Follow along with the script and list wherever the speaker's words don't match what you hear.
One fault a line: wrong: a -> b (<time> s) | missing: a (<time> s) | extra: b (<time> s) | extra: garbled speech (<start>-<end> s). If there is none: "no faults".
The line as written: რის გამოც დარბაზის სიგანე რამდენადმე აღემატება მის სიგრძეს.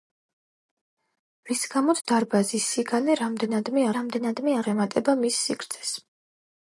extra: რამდენადმე (4.0 s)